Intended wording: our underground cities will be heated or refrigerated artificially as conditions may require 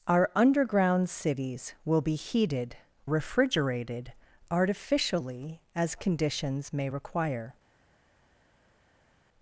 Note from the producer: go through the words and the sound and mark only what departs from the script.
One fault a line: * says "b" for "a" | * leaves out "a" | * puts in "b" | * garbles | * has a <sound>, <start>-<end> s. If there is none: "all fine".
* leaves out "or"